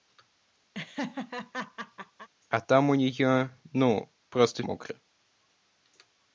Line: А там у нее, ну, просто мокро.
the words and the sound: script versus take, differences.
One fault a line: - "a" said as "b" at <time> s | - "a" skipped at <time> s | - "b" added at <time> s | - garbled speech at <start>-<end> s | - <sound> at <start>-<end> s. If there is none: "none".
- laugh at 0.7-2.3 s